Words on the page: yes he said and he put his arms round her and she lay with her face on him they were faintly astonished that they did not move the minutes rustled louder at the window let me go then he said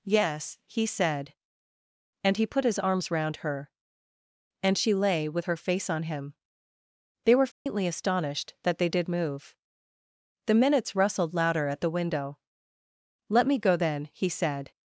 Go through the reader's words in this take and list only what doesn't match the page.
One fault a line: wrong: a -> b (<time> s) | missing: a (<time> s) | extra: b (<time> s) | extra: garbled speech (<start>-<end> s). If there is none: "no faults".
missing: not (9.1 s)